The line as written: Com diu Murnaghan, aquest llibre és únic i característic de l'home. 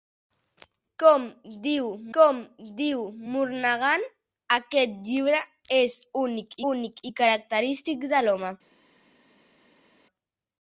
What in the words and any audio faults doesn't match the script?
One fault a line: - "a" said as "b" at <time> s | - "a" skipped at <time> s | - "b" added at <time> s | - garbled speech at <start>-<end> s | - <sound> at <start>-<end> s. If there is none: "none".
- "com diu" added at 2.2 s
- "únic" added at 6.7 s